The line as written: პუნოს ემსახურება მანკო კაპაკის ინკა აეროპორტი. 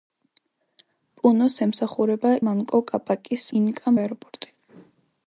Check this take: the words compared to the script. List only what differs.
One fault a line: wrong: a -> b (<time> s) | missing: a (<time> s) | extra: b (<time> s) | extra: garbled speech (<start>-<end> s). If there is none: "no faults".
no faults